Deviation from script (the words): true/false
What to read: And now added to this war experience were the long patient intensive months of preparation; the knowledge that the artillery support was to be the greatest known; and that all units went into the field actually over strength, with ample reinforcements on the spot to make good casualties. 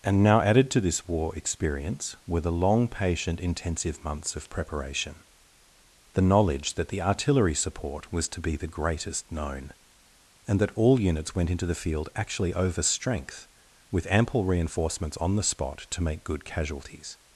false